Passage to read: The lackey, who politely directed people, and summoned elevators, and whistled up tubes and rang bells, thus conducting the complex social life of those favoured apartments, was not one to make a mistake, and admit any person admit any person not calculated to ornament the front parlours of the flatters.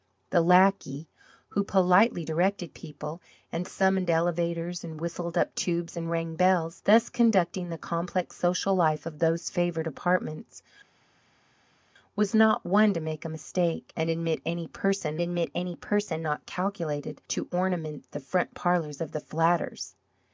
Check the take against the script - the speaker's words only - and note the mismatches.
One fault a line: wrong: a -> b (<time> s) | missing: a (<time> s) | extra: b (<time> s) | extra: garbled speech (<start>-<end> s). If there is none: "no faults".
no faults